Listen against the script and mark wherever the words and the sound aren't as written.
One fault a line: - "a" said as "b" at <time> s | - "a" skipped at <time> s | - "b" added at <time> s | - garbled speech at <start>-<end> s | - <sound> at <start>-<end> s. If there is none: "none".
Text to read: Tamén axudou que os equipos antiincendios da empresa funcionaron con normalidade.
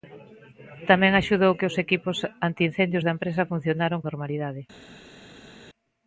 - "con" skipped at 4.0 s